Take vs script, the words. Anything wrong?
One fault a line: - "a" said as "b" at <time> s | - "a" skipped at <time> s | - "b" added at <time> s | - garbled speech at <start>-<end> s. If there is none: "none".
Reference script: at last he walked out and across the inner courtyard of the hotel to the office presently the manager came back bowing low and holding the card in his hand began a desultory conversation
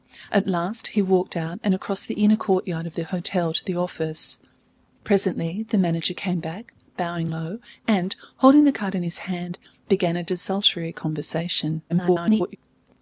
- garbled speech at 11.9-12.6 s